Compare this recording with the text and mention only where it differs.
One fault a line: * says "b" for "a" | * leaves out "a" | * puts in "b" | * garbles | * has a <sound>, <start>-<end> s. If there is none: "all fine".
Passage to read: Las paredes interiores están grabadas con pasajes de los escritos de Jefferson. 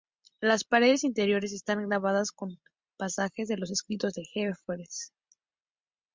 all fine